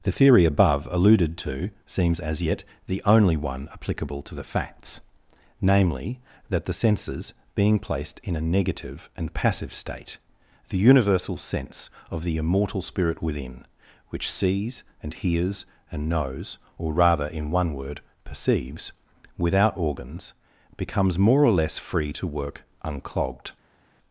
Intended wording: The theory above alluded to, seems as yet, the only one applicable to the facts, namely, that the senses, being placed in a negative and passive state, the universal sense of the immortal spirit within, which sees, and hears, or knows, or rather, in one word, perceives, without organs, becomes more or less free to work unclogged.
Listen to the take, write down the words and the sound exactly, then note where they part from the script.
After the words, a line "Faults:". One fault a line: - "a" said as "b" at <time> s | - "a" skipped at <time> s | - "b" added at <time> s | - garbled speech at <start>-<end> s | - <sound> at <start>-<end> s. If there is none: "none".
The theory above alluded to, seems as yet, the only one applicable to the facts, namely, that the senses, being placed in a negative and passive state, the universal sense of the immortal spirit within, which sees, and hears, and knows, or rather, in one word, perceives, without organs, becomes more or less free to work unclogged.
Faults:
- "or" said as "and" at 15.9 s